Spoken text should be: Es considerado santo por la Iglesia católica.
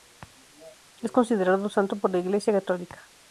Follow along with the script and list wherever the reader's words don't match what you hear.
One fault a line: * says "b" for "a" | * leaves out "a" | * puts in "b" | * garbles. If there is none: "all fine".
all fine